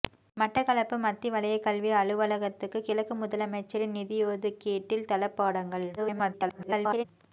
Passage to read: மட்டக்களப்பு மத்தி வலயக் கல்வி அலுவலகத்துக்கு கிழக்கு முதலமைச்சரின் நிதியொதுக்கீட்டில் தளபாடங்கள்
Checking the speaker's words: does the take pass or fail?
fail